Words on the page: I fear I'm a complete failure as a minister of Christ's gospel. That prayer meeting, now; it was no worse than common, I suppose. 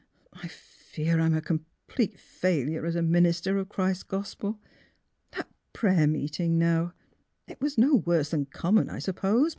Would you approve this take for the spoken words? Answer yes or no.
yes